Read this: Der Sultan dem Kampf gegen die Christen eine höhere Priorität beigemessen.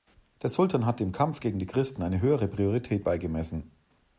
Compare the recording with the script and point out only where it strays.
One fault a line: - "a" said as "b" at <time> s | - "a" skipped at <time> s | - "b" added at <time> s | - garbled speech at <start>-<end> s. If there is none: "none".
- "hat" added at 0.9 s